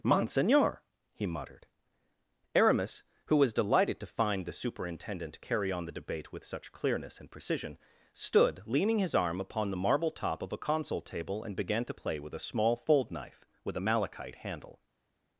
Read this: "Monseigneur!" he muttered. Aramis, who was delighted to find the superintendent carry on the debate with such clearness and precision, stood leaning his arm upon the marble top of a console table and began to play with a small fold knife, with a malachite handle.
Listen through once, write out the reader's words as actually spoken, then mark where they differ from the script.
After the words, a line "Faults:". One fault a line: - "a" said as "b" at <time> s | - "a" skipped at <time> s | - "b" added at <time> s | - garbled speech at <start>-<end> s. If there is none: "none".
"Monseigneur!" he muttered. Aramis, who was delighted to find the superintendent carry on the debate with such clearness and precision, stood leaning his arm upon the marble top of a console table and began to play with a small fold knife, with a malachite handle.
Faults:
none